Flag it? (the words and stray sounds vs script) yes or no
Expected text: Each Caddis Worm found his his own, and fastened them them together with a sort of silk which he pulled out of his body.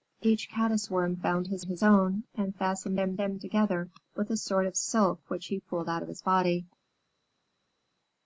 no